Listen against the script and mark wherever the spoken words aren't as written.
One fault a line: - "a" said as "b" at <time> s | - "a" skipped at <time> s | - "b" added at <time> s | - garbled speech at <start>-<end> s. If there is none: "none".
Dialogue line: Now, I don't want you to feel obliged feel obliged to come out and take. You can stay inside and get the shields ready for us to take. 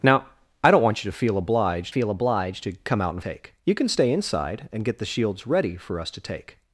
none